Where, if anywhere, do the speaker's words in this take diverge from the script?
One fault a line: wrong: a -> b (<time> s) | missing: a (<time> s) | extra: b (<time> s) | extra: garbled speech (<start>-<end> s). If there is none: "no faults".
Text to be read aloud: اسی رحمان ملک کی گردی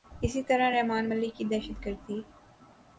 extra: طرح (0.4 s)
extra: دہشت (1.5 s)